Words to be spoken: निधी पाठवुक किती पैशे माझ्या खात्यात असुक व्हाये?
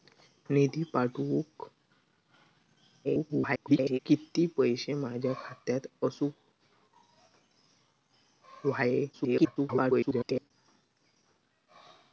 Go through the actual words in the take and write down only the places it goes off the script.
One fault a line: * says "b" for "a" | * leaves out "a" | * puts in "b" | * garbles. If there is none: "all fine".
* garbles
* garbles